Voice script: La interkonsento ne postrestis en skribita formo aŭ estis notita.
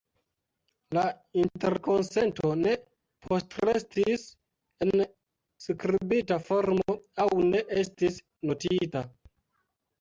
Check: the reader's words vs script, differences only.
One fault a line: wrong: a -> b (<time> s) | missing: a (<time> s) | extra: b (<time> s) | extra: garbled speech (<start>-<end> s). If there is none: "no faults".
extra: ne (7.5 s)